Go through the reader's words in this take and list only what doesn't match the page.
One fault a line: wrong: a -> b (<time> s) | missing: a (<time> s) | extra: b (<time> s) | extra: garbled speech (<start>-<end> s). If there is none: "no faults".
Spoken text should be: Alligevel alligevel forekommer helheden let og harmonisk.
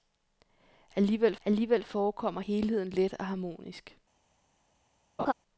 no faults